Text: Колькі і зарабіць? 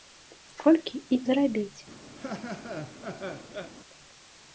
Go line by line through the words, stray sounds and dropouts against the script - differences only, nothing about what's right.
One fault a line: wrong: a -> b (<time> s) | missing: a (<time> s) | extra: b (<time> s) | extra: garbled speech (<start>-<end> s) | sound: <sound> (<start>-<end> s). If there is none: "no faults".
sound: laugh (2.2-3.7 s)